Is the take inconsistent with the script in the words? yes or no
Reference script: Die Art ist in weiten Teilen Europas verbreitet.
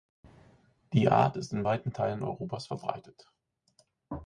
no